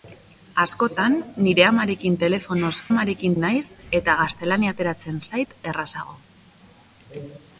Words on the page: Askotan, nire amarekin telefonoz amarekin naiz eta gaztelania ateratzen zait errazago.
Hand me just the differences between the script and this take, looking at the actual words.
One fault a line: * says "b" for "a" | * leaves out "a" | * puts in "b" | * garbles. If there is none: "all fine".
all fine